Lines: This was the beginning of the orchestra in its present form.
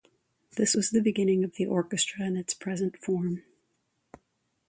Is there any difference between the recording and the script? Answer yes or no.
no